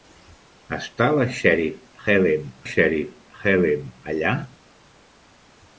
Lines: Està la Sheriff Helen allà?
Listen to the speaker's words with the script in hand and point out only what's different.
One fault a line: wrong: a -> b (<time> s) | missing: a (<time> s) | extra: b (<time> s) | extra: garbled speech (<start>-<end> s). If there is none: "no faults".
extra: Sheriff Helen (2.7 s)